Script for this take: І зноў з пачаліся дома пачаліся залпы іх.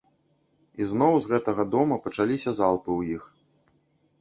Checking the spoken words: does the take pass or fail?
fail